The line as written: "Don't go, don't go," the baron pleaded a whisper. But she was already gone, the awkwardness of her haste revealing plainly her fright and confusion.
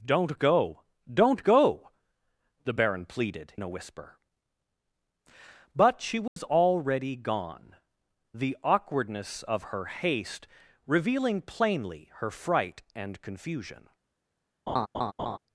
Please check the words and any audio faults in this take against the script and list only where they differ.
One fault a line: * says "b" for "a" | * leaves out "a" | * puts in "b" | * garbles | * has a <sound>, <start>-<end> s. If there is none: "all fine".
* has a dropout, 6.3-6.4 s
* has a laugh, 14.7-15.4 s